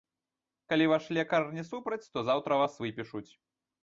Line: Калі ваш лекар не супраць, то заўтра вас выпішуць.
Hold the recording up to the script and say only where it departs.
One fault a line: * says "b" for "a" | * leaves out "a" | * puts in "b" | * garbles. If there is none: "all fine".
all fine